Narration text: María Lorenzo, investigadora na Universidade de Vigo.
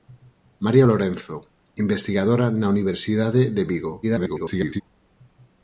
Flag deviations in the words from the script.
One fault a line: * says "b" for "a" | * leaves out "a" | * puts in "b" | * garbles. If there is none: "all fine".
* garbles